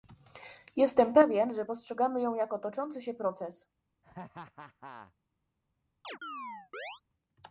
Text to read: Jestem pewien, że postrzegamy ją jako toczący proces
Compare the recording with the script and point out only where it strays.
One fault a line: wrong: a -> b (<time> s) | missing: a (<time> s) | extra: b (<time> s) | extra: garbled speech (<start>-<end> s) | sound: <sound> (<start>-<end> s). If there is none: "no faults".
extra: się (3.0 s)
sound: laugh (4.0-5.1 s)
sound: chirp (6.0-7.0 s)